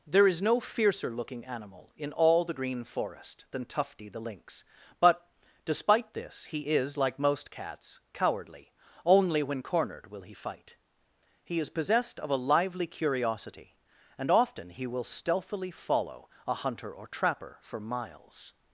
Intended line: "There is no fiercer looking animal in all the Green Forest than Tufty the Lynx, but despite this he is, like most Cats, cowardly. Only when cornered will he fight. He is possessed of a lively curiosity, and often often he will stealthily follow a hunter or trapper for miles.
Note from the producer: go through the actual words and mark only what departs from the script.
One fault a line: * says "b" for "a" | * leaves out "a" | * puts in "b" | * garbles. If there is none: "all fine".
* leaves out "often"